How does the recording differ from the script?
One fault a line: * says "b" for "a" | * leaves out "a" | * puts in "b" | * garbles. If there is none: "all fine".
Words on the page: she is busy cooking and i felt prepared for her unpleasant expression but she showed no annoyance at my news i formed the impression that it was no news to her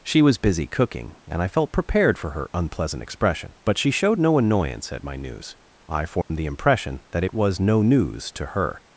* says "was" for "is"